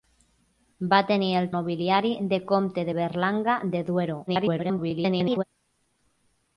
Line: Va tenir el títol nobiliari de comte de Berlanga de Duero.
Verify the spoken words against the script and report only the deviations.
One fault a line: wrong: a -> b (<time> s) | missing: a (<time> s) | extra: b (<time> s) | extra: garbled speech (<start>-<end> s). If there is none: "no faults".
missing: títol (1.5 s)
extra: garbled speech (4.3-5.4 s)